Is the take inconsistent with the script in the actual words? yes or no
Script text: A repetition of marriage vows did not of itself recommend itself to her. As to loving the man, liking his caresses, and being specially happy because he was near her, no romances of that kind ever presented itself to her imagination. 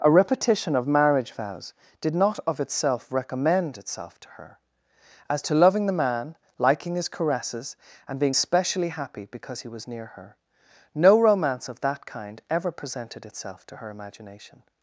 yes